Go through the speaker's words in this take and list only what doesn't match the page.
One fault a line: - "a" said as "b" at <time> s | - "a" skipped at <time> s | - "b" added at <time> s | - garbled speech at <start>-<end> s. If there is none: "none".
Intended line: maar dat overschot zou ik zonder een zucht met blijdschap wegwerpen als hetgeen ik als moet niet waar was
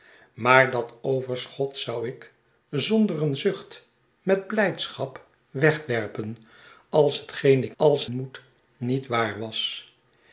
none